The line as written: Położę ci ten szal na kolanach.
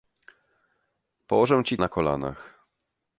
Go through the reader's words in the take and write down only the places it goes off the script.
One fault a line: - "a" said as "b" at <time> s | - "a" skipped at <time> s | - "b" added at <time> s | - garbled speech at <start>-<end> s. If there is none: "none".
- "ten szal" skipped at 1.8 s